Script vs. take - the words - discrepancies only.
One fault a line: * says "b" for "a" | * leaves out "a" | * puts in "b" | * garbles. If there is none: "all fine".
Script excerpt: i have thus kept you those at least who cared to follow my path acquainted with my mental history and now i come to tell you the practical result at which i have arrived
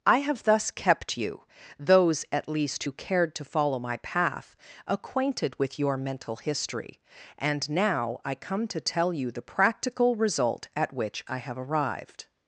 * says "your" for "my"